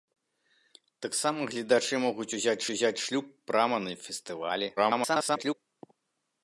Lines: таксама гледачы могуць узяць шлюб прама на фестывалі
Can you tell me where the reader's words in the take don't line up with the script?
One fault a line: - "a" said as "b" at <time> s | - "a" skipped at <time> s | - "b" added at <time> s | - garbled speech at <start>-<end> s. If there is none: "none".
- "узяць" added at 2.7 s
- garbled speech at 4.8-5.5 s